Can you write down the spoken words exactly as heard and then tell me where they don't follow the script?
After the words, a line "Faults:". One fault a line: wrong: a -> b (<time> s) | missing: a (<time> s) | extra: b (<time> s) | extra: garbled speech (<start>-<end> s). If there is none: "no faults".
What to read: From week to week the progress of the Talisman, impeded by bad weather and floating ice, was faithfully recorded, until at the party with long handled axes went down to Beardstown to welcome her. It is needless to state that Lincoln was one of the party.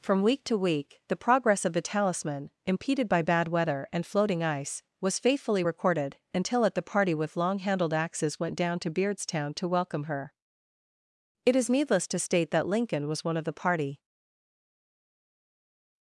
From week to week the progress of the Talisman, impeded by bad weather and floating ice, was faithfully recorded, until at the party with long handled axes went down to Beardstown to welcome her. It is needless to state that Lincoln was one of the party.
Faults:
no faults